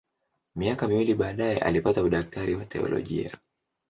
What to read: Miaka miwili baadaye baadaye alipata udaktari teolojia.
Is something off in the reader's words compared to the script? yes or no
yes